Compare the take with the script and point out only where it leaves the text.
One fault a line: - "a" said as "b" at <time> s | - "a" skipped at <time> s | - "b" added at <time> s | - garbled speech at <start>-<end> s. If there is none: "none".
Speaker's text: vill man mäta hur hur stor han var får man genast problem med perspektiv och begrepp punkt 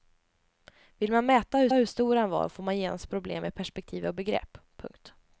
none